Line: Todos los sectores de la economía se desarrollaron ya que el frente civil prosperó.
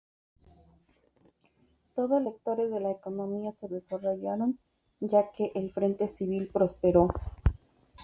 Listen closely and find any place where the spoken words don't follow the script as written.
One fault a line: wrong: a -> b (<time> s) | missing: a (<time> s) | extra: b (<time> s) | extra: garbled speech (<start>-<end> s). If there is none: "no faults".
missing: los (2.2 s)